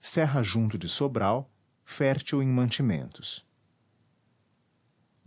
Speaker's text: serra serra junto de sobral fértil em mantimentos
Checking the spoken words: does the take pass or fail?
fail